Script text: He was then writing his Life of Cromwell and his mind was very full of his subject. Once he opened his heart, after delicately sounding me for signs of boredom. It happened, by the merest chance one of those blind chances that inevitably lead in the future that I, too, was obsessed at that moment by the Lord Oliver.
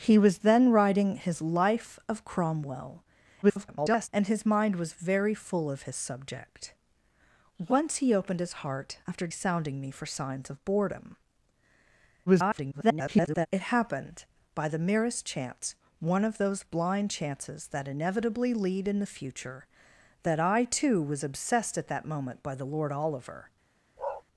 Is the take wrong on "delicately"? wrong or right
wrong